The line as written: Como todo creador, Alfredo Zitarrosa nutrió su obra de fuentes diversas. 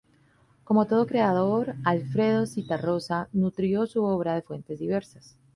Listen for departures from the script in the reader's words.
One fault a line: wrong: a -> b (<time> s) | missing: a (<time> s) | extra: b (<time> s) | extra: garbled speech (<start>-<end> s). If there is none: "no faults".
no faults